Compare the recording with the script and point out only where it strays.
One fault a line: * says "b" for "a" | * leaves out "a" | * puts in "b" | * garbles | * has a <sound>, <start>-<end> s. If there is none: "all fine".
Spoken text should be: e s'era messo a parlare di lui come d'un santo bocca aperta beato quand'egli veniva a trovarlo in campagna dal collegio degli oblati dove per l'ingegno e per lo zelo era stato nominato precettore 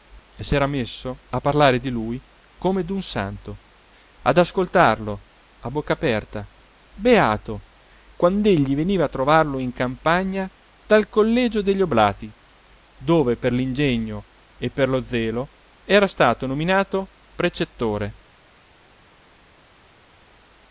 * puts in "ad ascoltarlo a"